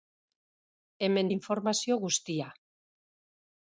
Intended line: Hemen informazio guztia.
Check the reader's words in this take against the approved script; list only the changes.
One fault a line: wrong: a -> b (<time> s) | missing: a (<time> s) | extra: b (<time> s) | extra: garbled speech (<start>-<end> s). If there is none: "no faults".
no faults